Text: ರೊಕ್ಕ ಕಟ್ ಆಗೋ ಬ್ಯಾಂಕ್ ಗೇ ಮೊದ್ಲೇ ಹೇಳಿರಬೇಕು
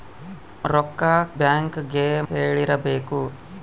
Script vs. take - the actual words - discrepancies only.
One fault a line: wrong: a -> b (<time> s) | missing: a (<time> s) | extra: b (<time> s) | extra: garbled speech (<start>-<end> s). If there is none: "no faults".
missing: ಕಟ್ ಆಗೋ (1.0 s)
missing: ಮೊದ್ಲೇ (2.0 s)